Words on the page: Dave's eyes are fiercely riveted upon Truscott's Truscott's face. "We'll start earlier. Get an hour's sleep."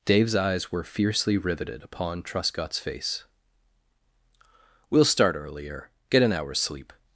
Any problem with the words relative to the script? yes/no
yes